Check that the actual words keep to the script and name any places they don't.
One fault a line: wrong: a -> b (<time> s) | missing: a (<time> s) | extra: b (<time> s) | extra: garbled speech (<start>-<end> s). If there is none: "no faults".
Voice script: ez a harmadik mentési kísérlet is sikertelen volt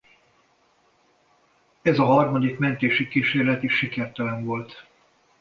no faults